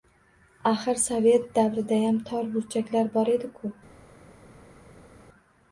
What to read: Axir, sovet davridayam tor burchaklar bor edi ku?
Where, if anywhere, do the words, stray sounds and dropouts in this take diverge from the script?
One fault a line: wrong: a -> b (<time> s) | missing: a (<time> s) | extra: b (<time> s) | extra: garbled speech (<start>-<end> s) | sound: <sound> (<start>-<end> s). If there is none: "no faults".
no faults